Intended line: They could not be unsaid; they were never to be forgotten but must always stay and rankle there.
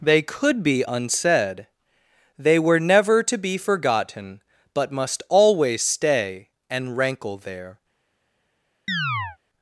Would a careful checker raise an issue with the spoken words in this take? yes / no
yes